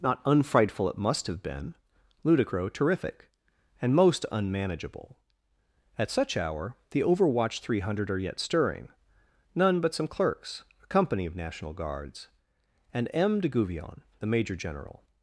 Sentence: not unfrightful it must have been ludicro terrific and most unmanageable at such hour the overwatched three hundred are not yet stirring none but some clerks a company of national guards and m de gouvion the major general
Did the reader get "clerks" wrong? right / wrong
right